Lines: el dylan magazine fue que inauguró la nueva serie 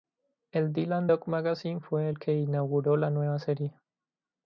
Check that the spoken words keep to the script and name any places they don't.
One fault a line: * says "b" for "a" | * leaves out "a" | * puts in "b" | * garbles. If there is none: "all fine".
* puts in "dog"
* puts in "el"